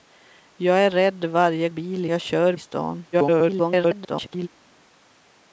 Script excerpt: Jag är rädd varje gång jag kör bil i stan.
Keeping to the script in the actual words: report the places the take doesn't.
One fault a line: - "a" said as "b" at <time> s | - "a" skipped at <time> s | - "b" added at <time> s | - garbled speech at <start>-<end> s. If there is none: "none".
- "gång" said as "bil" at 1.7 s
- "bil" skipped at 2.6 s
- garbled speech at 3.1-4.5 s